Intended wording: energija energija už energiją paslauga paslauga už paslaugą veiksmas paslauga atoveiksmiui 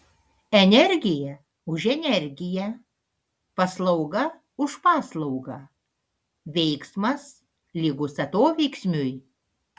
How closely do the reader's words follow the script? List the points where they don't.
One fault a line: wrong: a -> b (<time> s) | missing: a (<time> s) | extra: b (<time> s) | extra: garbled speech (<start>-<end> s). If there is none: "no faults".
missing: energija (1.4 s)
missing: paslauga (4.2 s)
wrong: paslauga -> lygus (7.7 s)